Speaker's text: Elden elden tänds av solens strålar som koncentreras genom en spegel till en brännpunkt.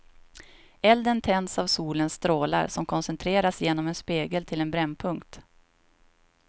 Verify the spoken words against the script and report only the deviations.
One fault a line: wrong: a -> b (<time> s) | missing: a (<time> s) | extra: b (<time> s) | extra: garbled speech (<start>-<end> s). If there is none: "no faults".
missing: elden (1.2 s)